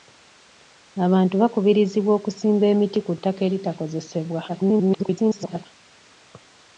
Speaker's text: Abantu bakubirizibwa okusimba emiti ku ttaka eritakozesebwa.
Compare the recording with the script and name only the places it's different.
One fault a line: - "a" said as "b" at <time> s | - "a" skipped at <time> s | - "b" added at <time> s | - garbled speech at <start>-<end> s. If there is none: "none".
- garbled speech at 4.5-5.7 s